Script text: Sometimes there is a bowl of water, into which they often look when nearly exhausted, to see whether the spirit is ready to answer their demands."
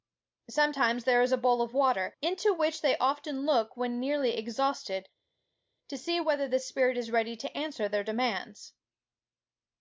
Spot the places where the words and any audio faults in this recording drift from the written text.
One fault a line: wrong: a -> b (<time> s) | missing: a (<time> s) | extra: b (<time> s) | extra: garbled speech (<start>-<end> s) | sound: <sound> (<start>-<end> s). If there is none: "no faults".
no faults